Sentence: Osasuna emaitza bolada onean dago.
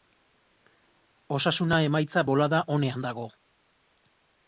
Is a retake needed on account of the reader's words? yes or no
no